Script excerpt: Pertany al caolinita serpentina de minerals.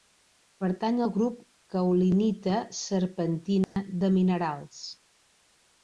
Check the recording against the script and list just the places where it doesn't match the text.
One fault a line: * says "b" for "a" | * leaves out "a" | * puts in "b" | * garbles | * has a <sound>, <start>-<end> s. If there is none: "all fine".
* puts in "grup"
* has a dropout, 3.6-3.8 s